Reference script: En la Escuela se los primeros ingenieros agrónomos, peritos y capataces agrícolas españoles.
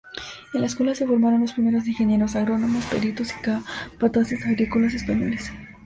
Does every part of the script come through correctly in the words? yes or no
no